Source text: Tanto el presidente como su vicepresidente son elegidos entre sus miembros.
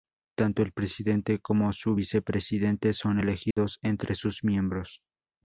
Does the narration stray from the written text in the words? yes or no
no